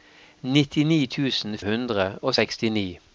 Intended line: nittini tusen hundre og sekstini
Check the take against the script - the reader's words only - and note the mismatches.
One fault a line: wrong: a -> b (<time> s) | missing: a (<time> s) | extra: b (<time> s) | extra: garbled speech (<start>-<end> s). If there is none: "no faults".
no faults